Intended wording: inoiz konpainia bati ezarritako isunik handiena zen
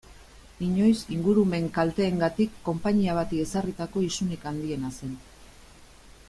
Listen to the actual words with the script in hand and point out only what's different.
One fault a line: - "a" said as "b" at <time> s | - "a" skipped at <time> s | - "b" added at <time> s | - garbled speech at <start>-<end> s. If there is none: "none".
- "ingurumen kalteengatik" added at 1.1 s